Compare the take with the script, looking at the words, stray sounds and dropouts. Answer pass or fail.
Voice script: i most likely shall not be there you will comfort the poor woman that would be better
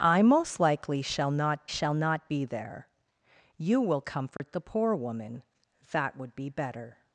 fail